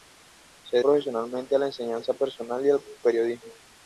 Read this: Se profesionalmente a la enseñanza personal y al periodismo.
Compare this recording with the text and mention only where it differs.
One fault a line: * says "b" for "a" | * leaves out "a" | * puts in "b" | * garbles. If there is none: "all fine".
all fine